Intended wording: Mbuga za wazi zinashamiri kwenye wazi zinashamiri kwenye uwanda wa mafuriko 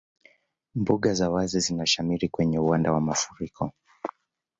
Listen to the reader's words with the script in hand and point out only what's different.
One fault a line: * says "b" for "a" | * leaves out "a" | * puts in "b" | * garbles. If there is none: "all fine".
* leaves out "wazi zinashamiri kwenye"